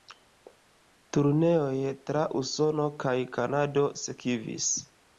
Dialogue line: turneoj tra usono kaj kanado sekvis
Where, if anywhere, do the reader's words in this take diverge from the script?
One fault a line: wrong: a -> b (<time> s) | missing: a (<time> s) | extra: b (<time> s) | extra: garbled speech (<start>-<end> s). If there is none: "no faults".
no faults